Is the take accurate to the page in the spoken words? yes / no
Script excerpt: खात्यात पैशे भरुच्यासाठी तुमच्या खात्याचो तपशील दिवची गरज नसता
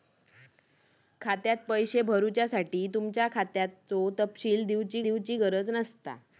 no